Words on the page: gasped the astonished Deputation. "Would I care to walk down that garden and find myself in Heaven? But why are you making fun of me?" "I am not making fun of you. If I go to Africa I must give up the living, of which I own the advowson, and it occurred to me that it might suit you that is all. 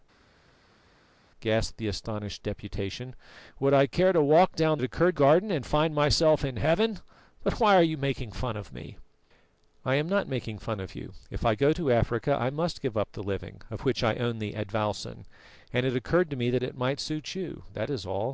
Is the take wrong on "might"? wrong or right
right